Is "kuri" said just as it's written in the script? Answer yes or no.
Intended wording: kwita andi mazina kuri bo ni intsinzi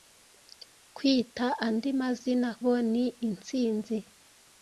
no